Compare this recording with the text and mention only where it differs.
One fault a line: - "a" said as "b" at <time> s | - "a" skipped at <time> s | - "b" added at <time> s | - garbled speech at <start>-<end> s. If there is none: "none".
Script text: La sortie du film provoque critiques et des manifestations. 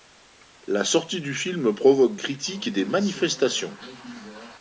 none